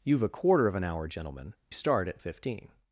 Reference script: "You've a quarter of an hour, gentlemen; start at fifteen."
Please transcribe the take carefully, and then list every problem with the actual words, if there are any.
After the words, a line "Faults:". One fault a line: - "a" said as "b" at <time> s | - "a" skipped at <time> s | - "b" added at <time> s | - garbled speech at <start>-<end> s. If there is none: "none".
"You've a quarter of an hour, gentlemen; start at fifteen."
Faults:
none